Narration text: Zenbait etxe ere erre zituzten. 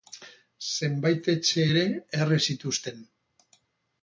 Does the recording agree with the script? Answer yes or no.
yes